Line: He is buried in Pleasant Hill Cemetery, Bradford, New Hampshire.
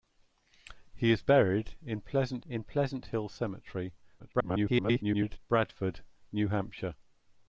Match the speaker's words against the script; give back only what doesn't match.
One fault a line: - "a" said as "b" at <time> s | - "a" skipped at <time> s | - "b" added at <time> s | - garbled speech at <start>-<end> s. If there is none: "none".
- "in Pleasant" added at 2.5 s
- garbled speech at 4.2-5.4 s